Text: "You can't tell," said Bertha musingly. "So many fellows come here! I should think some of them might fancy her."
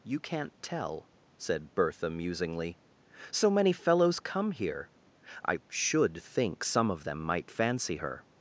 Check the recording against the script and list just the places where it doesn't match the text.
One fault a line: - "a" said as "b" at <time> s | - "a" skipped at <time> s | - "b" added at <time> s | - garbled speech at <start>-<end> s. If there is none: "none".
none